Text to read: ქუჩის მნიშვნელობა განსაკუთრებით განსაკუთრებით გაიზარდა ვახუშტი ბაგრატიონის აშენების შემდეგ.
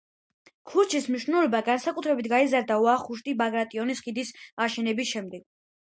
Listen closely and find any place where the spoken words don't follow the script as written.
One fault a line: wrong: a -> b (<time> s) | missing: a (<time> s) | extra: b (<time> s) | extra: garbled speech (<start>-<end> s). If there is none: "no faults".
missing: განსაკუთრებით (2.3 s)
extra: ხიდის (4.1 s)